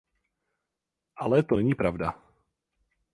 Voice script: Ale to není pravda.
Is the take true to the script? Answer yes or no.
yes